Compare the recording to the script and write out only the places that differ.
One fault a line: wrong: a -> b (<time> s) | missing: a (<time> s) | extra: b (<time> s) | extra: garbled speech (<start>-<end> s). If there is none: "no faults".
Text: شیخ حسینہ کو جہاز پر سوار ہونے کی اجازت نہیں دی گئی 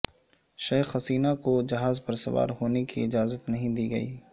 no faults